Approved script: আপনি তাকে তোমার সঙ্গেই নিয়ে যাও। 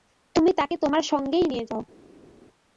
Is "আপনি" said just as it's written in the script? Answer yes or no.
no